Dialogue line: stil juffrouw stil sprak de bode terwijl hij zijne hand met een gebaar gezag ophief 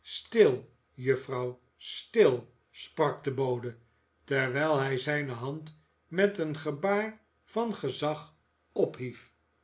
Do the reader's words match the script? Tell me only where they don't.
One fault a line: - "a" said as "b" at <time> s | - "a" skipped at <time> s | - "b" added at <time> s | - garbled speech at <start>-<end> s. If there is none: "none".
- "van" added at 7.4 s